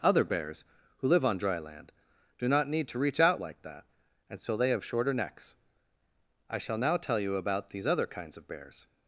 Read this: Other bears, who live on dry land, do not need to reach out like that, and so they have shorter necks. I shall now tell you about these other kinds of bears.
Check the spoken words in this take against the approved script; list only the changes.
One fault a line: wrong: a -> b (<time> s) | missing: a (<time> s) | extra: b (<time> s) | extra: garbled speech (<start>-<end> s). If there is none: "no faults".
no faults